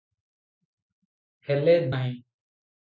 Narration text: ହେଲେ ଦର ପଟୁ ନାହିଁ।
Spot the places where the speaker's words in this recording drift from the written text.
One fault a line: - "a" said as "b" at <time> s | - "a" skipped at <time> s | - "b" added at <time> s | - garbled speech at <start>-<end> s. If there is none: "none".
- "ଦର ପଟୁ" skipped at 1.8 s